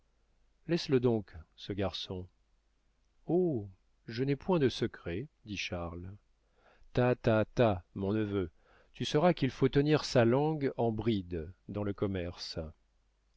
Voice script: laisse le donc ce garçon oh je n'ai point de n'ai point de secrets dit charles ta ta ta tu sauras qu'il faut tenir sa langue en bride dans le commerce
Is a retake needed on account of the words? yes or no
yes